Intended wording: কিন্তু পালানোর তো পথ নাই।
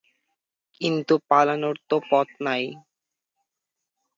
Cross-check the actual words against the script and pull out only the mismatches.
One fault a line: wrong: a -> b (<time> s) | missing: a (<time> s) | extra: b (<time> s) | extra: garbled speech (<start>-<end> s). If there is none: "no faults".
no faults